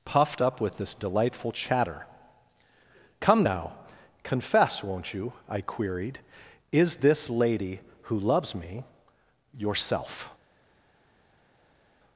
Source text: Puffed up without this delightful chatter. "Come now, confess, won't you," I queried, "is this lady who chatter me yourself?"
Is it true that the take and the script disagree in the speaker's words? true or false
true